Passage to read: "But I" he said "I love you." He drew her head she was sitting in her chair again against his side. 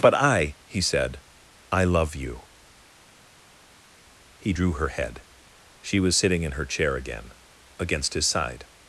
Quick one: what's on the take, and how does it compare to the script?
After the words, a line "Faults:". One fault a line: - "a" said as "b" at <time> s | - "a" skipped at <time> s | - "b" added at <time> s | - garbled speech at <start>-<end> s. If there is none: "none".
"But I" he said "I love you." He drew her head she was sitting in her chair again against his side.
Faults:
none